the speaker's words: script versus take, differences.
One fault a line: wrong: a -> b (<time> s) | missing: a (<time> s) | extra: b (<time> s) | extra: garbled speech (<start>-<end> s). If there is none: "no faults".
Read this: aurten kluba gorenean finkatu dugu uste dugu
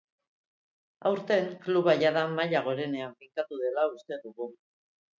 extra: jada maila (2.0 s)
wrong: dugu -> dela (3.7 s)